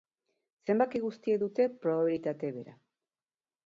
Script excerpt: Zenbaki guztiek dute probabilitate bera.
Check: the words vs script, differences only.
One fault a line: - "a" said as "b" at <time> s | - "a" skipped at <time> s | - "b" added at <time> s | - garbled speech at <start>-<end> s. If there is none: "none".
none